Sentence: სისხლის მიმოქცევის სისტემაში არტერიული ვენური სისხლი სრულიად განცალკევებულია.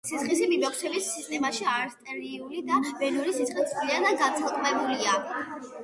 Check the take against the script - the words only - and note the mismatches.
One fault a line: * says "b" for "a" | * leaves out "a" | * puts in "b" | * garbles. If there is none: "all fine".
* puts in "და"